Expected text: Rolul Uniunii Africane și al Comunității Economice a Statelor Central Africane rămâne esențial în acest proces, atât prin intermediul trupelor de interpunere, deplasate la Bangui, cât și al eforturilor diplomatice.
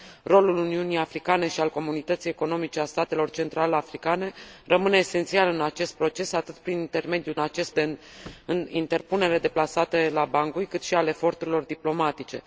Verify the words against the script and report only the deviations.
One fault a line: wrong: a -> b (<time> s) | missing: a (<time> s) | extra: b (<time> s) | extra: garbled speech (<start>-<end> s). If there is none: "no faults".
wrong: trupelor -> acest (7.4 s)